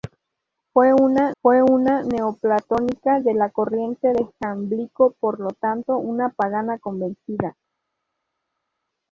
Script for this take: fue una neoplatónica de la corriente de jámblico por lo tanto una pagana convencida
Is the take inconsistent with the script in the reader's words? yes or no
yes